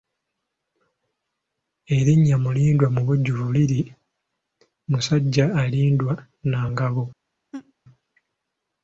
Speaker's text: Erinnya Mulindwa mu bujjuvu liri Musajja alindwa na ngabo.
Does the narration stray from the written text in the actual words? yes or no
no